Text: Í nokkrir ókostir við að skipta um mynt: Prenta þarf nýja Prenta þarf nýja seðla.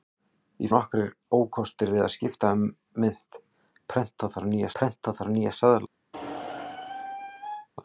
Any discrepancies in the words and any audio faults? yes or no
yes